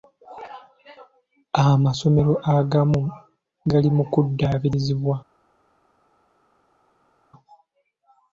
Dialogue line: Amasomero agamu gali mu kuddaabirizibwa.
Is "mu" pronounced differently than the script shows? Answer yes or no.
no